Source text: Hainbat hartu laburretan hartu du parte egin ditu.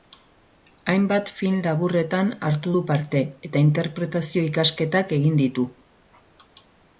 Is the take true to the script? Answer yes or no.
no